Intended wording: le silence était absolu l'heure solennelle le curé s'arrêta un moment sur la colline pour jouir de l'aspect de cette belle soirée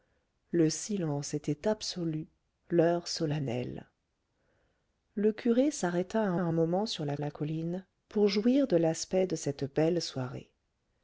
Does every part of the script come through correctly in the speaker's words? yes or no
no